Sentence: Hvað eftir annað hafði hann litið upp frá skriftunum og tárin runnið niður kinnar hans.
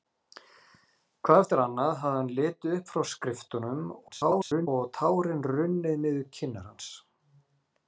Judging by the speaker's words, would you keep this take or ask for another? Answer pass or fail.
fail